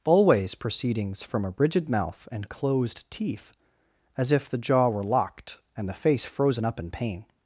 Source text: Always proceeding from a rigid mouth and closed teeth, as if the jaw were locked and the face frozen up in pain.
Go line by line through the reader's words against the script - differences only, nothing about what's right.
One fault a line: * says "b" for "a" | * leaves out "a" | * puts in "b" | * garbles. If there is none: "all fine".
* says "proceedings" for "proceeding"